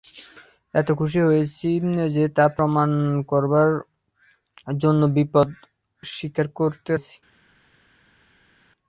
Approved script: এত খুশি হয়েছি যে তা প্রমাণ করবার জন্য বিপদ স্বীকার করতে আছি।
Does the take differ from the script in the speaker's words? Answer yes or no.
no